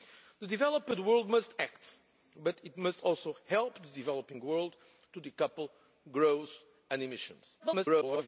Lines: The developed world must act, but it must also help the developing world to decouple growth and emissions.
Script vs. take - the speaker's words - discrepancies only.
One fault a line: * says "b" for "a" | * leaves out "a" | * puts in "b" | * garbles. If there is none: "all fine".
* garbles